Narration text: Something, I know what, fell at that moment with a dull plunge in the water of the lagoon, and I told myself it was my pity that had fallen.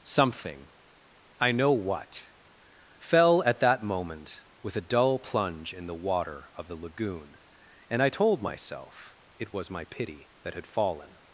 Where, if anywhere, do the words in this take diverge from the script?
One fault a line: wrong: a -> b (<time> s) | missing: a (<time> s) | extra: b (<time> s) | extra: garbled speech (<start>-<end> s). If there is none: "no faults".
no faults